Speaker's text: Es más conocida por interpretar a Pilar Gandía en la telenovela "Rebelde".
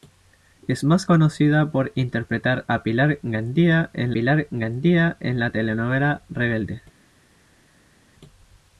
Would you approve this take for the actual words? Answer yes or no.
no